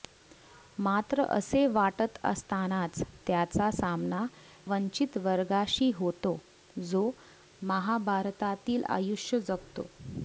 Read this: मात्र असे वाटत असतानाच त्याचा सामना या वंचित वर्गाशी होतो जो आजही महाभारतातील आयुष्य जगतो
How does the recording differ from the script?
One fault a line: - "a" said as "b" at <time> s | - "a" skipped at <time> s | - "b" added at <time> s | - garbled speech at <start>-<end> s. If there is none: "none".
- "या" skipped at 4.2 s
- "आजही" skipped at 7.1 s